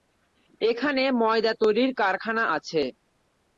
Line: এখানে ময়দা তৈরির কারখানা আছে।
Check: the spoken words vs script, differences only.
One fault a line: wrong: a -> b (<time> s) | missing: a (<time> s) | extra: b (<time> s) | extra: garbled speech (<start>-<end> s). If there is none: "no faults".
no faults